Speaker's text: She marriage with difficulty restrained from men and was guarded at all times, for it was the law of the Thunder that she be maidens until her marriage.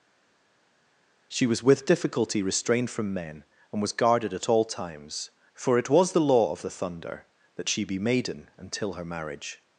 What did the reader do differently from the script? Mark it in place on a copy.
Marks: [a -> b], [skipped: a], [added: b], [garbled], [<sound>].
She [marriage -> was] with difficulty restrained from men and was guarded at all times, for it was the law of the Thunder that she be [maidens -> maiden] until her marriage.